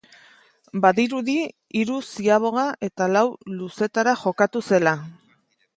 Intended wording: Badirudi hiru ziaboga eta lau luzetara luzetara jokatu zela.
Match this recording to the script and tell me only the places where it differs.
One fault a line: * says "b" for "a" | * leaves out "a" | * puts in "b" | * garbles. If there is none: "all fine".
* leaves out "luzetara"